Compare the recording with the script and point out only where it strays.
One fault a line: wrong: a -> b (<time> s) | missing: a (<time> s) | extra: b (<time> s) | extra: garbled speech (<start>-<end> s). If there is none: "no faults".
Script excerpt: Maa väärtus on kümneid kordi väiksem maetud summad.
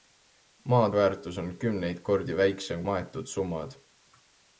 no faults